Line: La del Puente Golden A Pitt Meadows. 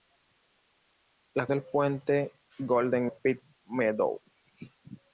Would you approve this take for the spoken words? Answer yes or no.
yes